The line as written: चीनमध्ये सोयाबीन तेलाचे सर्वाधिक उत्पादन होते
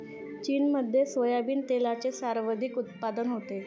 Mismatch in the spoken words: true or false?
false